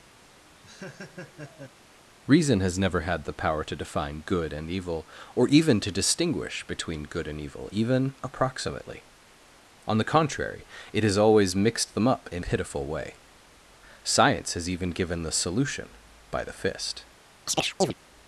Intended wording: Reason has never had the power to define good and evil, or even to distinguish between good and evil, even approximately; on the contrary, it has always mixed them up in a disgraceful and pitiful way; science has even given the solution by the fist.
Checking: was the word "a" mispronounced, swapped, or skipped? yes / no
yes